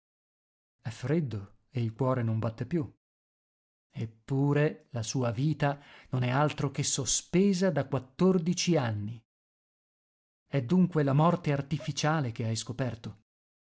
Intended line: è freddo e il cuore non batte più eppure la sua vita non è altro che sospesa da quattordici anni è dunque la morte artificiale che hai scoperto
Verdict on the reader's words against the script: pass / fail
pass